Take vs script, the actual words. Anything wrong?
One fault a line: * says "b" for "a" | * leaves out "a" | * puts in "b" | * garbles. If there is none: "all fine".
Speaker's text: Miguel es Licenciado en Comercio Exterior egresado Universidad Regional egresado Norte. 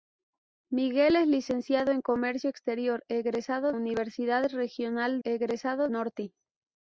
all fine